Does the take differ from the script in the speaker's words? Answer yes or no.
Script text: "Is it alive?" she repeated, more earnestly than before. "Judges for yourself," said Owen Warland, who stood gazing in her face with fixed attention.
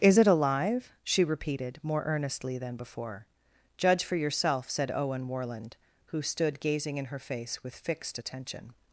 yes